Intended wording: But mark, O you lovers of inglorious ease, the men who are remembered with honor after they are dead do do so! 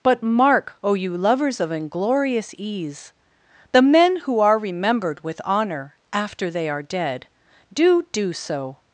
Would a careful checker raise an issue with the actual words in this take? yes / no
no